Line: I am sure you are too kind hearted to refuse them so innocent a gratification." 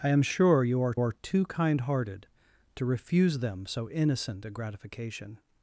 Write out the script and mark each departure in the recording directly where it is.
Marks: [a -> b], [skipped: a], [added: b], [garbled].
I am sure you are [added: are] too kind hearted to refuse them so innocent a gratification."